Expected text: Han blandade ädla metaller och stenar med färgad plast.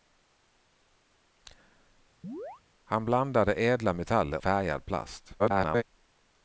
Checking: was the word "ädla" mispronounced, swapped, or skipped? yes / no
no